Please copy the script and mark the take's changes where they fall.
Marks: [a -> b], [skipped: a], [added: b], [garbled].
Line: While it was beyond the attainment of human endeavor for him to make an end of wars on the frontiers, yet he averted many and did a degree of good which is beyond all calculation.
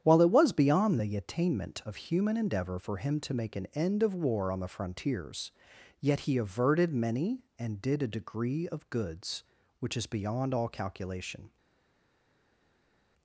While it was beyond the attainment of human endeavor for him to make an end of [wars -> war] on the frontiers, yet he averted many and did a degree of [good -> goods] which is beyond all calculation.